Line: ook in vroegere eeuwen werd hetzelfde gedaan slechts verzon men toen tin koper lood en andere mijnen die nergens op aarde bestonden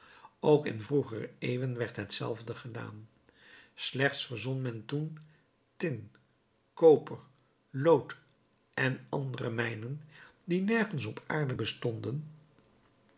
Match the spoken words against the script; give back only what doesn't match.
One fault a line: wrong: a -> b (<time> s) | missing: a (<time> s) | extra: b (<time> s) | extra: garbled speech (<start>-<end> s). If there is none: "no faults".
no faults